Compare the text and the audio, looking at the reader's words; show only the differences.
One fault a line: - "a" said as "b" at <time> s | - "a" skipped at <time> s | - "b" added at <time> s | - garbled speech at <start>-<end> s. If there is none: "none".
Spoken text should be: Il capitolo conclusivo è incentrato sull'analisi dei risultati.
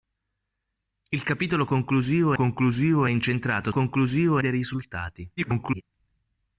- "conclusivo" added at 2.3 s
- "sull'analisi" said as "conclusivo" at 3.7 s
- garbled speech at 5.4-5.8 s